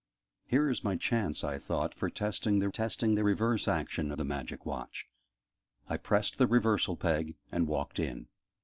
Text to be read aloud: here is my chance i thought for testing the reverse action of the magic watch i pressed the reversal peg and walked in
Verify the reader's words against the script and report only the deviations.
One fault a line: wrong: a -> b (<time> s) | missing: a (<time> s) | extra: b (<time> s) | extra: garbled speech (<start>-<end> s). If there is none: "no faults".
extra: testing the (2.7 s)
missing: of (4.1 s)